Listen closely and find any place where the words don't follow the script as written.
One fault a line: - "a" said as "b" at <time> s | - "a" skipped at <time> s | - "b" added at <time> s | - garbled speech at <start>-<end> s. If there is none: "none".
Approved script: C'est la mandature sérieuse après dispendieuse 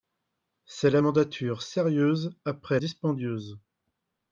none